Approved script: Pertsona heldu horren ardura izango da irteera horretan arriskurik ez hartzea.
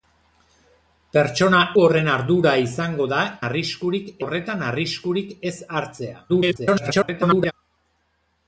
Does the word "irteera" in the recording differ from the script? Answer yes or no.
yes